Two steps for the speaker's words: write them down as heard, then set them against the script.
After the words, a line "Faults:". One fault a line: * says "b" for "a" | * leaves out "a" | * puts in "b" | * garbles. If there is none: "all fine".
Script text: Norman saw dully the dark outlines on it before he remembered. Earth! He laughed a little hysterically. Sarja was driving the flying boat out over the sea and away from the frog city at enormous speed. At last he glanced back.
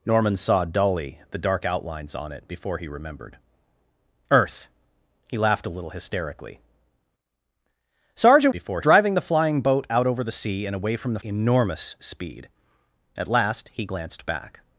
Norman saw dully the dark outlines on it before he remembered. Earth! He laughed a little hysterically. Sarja before driving the flying boat out over the sea and away from the enormous speed. At last he glanced back.
Faults:
* says "before" for "was"
* leaves out "frog city at"